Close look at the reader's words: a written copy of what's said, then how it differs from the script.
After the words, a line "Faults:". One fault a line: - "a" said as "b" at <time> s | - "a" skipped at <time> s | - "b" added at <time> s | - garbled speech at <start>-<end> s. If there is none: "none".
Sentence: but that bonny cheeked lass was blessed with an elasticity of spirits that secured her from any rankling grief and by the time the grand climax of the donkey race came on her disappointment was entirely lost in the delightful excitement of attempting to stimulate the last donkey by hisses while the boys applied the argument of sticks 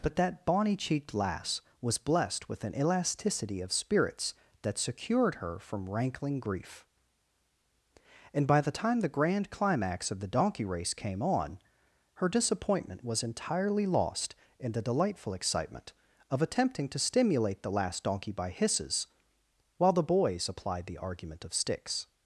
but that bonny cheeked lass was blessed with an elasticity of spirits that secured her from rankling grief and by the time the grand climax of the donkey race came on her disappointment was entirely lost in the delightful excitement of attempting to stimulate the last donkey by hisses while the boys applied the argument of sticks
Faults:
- "any" skipped at 5.9 s